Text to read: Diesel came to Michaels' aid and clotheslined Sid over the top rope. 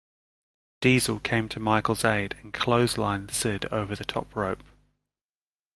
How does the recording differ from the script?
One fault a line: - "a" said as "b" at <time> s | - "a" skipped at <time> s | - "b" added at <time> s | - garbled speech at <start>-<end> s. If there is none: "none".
none